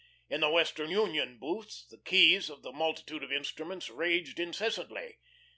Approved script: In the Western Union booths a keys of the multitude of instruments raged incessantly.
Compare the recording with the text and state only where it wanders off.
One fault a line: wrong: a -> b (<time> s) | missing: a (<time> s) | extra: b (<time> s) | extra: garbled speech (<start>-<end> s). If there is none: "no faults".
wrong: a -> the (1.8 s)